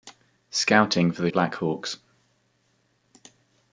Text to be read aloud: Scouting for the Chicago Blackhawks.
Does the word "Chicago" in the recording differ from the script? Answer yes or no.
yes